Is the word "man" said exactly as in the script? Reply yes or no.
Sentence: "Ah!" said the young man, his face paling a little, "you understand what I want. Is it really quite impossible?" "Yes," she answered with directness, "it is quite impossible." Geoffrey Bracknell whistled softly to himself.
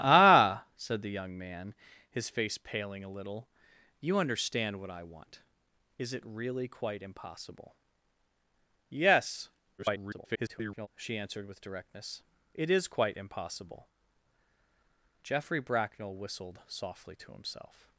yes